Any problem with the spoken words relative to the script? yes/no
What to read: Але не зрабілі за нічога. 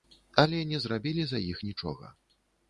yes